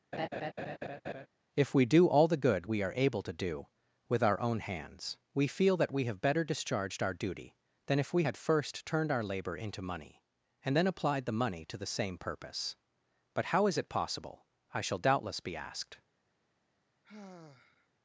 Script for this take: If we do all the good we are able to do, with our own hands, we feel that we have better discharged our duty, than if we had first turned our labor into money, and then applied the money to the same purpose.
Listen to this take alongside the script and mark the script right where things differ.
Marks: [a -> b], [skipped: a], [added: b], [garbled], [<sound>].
[laugh] If we do all the good we are able to do, with our own hands, we feel that we have better discharged our duty, than if we had first turned our labor into money, and then applied the money to the same purpose. [added: But how is it possible I shall doubtless be asked] [sigh]